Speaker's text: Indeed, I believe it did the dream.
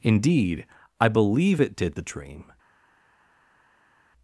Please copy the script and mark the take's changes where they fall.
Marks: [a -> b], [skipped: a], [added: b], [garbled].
Indeed, I believe it did the dream.